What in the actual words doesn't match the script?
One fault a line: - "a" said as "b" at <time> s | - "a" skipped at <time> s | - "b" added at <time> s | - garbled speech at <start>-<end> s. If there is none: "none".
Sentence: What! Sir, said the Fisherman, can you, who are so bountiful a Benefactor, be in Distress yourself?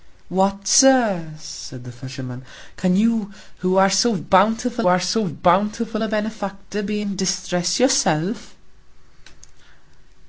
- "are so bountiful" added at 4.9 s